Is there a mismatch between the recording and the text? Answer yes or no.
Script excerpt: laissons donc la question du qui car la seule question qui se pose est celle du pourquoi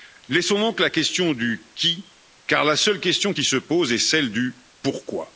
no